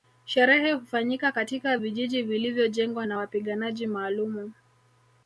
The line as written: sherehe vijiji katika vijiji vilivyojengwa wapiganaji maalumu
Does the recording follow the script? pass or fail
fail